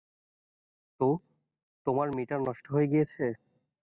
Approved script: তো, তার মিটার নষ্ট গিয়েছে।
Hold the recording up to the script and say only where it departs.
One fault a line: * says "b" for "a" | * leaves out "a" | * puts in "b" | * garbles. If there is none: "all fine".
* says "তোমার" for "তার"
* puts in "হয়ে"